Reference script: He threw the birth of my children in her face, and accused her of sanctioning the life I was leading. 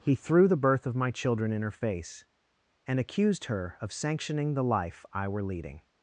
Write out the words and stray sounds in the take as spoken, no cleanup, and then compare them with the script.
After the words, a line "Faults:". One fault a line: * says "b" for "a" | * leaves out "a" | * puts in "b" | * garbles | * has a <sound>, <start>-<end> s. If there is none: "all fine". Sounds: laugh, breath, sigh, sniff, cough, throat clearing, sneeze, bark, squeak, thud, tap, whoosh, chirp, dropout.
He threw the birth of my children in her face, and accused her of sanctioning the life I were leading.
Faults:
* says "were" for "was"